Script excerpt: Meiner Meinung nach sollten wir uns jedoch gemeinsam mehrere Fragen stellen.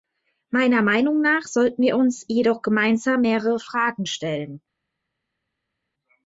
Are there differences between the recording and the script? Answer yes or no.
no